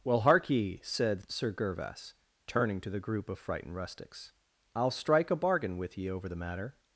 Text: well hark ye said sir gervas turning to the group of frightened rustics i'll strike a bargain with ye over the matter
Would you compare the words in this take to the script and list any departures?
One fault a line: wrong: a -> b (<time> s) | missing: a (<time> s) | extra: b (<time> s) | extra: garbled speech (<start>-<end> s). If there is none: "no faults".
no faults